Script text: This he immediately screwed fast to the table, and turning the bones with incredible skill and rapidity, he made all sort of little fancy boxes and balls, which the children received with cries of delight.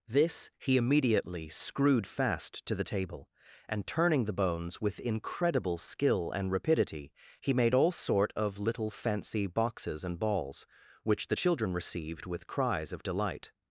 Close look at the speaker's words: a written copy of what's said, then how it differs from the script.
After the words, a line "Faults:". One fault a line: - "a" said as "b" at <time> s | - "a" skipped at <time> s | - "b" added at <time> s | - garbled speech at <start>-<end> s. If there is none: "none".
This he immediately screwed fast to the table, and turning the bones with incredible skill and rapidity, he made all sort of little fancy boxes and balls, which the children received with cries of delight.
Faults:
none